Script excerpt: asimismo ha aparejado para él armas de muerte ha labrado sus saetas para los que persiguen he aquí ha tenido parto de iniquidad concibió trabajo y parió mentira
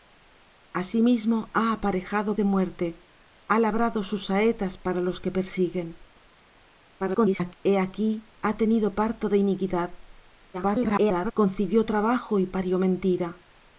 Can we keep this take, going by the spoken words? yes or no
no